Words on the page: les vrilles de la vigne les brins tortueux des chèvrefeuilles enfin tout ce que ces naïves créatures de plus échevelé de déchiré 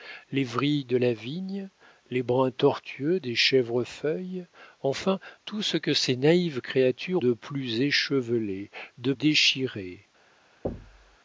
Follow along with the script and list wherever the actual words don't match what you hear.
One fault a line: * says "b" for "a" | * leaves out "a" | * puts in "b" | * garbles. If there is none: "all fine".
all fine